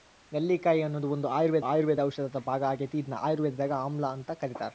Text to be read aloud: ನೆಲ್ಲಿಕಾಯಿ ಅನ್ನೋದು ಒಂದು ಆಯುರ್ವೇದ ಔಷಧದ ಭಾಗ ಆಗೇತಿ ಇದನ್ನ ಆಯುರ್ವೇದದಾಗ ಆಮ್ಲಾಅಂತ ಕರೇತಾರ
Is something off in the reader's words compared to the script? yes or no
yes